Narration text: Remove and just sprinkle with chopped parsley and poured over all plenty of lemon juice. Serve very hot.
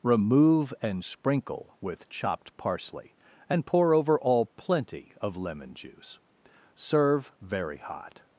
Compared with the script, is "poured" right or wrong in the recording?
wrong